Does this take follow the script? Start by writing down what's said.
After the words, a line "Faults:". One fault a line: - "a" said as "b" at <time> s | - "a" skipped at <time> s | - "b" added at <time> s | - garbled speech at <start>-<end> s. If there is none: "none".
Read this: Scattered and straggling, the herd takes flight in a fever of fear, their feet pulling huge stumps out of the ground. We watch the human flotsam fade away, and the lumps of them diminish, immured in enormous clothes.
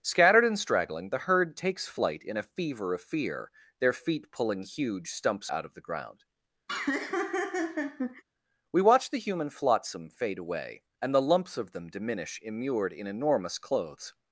Scattered and straggling, the herd takes flight in a fever of fear, their feet pulling huge stumps out of the ground. We watch the human flotsam fade away, and the lumps of them diminish, immured in enormous clothes.
Faults:
none